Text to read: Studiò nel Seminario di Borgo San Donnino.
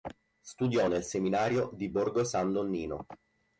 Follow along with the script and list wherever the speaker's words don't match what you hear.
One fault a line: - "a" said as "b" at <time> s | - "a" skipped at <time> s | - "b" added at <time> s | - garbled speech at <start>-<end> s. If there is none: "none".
none